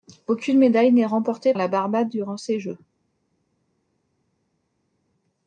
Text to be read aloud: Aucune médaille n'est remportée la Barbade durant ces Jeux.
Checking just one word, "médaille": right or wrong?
right